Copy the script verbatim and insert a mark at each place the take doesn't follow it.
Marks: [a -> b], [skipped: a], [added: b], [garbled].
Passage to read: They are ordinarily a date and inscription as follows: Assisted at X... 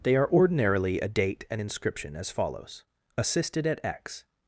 They are ordinarily a date and inscription as follows: Assisted at X...